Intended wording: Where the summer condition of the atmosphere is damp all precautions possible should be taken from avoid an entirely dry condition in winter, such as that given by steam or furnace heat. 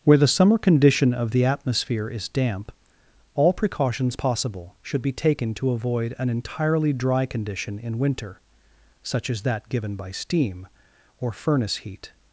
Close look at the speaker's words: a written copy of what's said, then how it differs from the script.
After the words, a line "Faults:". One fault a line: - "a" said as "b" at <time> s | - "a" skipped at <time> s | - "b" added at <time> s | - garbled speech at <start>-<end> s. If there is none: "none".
Where the summer condition of the atmosphere is damp all precautions possible should be taken to avoid an entirely dry condition in winter, such as that given by steam or furnace heat.
Faults:
- "from" said as "to" at 5.5 s